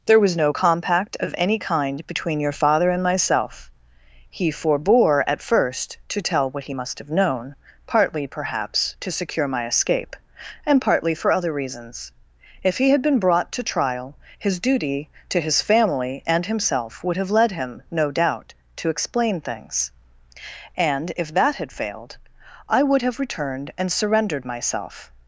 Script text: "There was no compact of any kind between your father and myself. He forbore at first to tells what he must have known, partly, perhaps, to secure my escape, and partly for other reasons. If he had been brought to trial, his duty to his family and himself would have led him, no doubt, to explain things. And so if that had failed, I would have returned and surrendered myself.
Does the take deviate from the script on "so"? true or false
true